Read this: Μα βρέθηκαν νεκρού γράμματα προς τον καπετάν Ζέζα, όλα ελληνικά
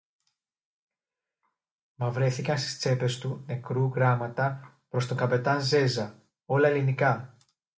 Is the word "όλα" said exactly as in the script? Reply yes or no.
yes